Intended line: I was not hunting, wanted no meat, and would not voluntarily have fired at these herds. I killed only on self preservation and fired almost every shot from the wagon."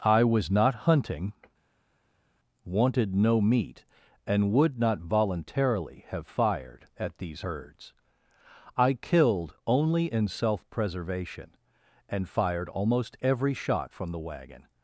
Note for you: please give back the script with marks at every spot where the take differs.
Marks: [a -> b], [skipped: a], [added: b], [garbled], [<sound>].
I was not hunting, wanted no meat, and would not voluntarily have fired at these herds. I killed only [on -> in] self preservation and fired almost every shot from the wagon."